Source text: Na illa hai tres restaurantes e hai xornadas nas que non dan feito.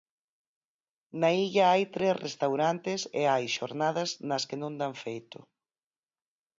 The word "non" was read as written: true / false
true